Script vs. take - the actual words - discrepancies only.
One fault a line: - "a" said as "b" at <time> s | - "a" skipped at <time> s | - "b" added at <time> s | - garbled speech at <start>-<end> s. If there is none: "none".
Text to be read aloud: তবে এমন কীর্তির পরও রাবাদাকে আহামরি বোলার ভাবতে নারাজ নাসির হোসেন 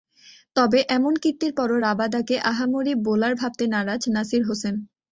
none